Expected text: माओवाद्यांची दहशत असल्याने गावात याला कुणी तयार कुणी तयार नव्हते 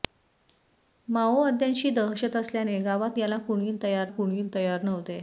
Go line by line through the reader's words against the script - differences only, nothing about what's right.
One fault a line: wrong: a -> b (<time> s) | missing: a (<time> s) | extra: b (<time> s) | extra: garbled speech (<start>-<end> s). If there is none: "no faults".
no faults